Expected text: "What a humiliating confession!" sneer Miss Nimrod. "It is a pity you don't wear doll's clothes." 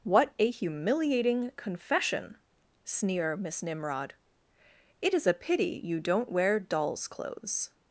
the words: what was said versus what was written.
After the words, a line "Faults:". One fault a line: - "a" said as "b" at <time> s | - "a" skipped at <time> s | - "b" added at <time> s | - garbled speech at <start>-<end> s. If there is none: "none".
"What a humiliating confession!" sneer Miss Nimrod. "It is a pity you don't wear doll's clothes."
Faults:
none